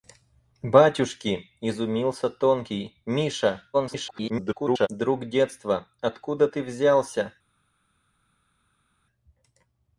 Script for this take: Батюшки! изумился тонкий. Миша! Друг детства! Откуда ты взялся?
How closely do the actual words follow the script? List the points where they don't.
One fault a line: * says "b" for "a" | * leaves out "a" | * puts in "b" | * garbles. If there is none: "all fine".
* garbles